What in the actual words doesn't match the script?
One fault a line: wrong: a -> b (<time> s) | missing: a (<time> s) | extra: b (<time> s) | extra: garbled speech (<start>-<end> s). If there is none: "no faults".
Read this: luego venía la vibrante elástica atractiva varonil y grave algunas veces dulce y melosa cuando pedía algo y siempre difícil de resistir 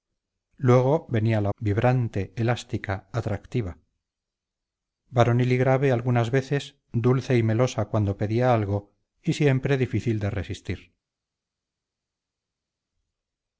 no faults